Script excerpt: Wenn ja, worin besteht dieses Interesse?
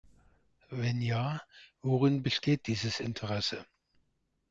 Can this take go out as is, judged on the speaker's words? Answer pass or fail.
pass